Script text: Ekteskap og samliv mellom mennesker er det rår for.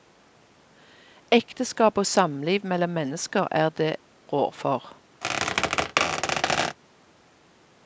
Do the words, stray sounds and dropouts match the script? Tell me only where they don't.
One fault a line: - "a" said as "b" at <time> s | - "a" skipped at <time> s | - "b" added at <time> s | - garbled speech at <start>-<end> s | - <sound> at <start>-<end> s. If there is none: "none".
- squeak at 5.2-6.8 s